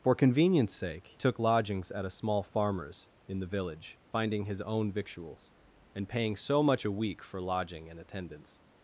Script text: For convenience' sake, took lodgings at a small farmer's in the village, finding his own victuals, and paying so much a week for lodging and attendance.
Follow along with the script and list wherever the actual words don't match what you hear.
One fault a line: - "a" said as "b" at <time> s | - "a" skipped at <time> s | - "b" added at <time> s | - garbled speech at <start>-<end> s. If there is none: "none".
none